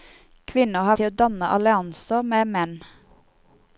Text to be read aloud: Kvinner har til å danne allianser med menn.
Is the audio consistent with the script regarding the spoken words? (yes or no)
yes